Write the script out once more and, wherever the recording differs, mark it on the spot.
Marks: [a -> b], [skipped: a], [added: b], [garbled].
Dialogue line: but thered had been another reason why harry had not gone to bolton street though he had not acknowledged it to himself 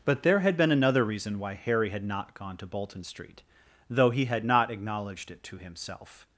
but [thered -> there] had been another reason why harry had not gone to bolton street though he had not acknowledged it to himself